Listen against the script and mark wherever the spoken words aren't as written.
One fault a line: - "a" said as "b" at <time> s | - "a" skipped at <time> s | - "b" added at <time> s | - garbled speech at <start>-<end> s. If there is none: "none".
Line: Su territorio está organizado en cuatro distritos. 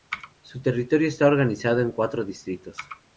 none